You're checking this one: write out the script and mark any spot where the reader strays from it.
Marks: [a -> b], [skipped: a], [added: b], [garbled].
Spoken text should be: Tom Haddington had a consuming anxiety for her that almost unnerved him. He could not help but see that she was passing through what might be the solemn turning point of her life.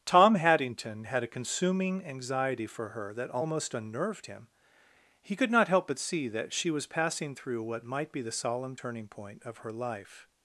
Tom Haddington had a consuming anxiety for her that almost unnerved him. He could not help but see that she was passing through what might be the solemn turning point of her life.